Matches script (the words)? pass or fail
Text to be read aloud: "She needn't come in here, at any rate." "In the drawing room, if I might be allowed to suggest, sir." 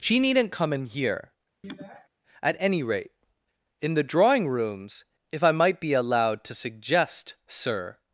fail